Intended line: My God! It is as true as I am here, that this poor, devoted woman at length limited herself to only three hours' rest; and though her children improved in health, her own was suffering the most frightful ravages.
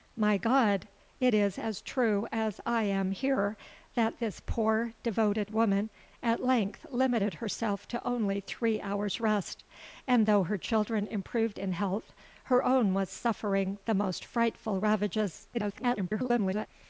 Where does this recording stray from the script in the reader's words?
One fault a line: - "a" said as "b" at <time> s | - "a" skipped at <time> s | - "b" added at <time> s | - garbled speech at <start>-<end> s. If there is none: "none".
- garbled speech at 15.5-16.7 s